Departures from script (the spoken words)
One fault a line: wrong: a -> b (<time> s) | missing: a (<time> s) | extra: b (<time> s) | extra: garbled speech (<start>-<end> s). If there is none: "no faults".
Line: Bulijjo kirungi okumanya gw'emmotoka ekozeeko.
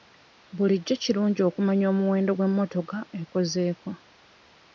extra: omuwendo (1.9 s)